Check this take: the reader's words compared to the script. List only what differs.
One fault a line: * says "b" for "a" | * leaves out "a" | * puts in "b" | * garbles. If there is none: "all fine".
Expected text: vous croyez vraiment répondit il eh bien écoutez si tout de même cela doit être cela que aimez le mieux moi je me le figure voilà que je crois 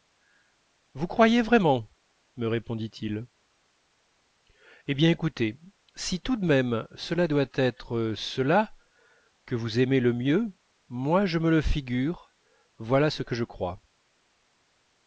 * puts in "me"
* puts in "vous"
* puts in "ce"